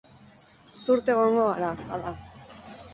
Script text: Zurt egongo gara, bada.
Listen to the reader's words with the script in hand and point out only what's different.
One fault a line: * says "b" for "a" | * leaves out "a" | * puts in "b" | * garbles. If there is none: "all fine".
all fine